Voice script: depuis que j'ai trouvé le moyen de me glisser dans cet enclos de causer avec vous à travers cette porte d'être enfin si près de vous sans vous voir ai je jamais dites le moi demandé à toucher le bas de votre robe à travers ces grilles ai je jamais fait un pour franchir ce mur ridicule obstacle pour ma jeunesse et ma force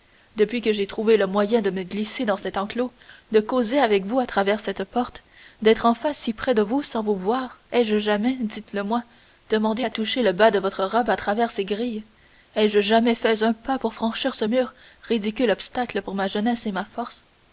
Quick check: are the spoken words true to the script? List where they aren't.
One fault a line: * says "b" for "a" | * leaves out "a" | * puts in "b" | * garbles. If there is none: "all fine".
* puts in "pas"